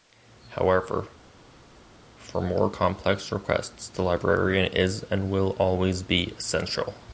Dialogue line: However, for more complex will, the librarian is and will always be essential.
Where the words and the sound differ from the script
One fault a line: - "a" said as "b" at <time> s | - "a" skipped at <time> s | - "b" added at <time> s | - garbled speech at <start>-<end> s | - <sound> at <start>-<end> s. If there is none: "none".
- "will" said as "requests" at 3.3 s